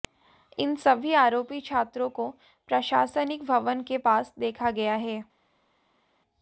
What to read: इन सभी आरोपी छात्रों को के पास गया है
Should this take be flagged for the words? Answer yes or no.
yes